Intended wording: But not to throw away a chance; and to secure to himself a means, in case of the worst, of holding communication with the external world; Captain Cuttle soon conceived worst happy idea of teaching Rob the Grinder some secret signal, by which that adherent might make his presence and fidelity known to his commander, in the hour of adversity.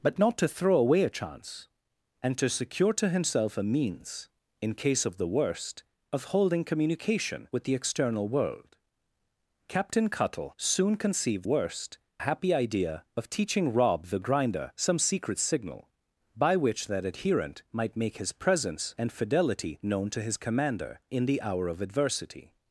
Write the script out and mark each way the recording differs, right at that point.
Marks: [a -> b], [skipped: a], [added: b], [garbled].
But not to throw away a chance; and to secure to himself a means, in case of the worst, of holding communication with the external world; Captain Cuttle soon conceived worst happy idea of teaching Rob the Grinder some secret signal, by which that adherent might make his presence and fidelity known to his commander, in the hour of adversity.